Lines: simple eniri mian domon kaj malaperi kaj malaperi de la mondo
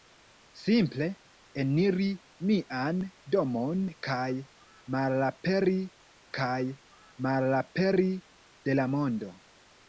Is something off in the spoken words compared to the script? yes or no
no